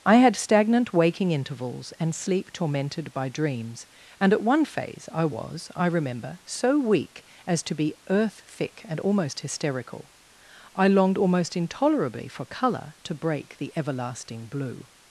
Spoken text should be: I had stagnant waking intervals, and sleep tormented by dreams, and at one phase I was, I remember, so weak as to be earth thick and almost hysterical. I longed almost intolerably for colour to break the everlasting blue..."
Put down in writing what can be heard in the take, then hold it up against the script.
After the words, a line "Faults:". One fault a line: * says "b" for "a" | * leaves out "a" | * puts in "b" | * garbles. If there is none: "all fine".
I had stagnant waking intervals, and sleep tormented by dreams, and at one phase I was, I remember, so weak as to be earth thick and almost hysterical. I longed almost intolerably for colour to break the everlasting blue..."
Faults:
all fine